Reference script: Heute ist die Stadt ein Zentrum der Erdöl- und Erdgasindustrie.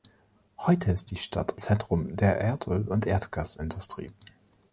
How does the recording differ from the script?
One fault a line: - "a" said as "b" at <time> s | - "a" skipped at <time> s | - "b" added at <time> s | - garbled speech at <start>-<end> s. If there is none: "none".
- "ein" skipped at 1.5 s